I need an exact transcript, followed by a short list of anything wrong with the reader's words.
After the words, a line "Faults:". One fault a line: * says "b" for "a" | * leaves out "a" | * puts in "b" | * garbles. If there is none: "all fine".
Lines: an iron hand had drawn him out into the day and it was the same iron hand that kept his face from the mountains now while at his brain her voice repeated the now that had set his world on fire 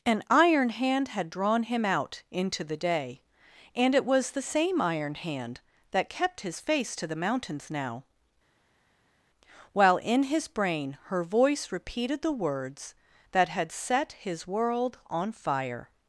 an iron hand had drawn him out into the day and it was the same iron hand that kept his face to the mountains now while in his brain her voice repeated the words that had set his world on fire
Faults:
* says "to" for "from"
* says "in" for "at"
* says "words" for "now"